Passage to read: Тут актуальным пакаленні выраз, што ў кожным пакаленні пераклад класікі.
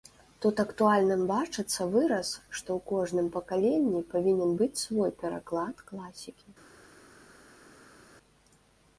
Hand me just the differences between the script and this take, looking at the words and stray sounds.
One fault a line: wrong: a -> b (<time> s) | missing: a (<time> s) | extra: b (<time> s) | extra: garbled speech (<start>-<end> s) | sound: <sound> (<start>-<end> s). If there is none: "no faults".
wrong: пакаленні -> бачыцца (1.3 s)
extra: павінен быць свой (4.2 s)